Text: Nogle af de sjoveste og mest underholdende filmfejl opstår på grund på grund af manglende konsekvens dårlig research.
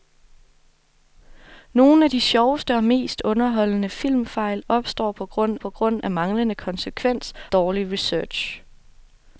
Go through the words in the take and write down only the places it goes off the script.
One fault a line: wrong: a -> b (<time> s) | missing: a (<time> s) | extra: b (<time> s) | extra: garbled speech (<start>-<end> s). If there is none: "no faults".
no faults